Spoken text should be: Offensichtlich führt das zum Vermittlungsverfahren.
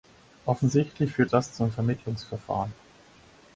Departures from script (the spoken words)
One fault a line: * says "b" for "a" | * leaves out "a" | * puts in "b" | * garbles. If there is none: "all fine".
all fine